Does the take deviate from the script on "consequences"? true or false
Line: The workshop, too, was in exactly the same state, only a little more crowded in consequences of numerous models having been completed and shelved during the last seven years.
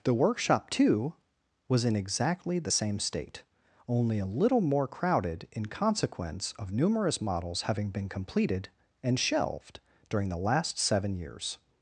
true